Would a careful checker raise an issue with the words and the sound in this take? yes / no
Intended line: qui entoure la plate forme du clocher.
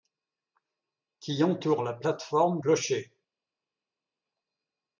yes